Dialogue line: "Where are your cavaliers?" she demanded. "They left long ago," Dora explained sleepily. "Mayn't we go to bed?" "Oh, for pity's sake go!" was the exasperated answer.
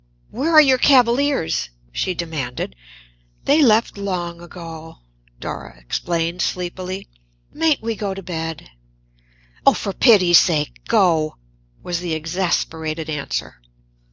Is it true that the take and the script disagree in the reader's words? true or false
false